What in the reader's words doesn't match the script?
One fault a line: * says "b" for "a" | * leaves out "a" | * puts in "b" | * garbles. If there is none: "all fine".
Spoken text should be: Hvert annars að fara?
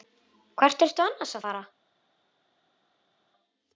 * puts in "ertu"